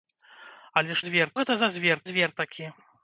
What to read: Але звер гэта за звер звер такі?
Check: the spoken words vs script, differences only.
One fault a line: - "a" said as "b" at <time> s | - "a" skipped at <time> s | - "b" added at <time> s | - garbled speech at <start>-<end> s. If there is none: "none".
none